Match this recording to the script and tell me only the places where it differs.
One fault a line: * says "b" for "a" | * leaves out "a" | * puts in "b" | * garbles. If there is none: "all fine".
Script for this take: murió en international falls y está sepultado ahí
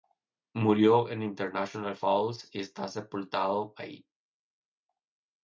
all fine